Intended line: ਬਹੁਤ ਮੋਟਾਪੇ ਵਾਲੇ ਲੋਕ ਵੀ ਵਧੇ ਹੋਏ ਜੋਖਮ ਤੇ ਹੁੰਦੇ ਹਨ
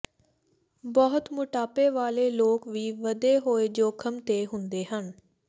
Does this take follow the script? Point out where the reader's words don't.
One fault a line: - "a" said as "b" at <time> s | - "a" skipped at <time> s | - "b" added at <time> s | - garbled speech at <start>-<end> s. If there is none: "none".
none